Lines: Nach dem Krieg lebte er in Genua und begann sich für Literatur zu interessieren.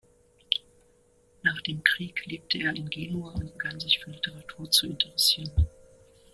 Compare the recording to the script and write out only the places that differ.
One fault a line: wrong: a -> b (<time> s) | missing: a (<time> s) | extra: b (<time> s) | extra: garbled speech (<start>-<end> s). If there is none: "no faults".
no faults